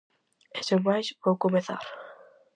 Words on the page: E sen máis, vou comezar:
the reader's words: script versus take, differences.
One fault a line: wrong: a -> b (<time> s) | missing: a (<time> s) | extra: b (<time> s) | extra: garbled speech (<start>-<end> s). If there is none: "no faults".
no faults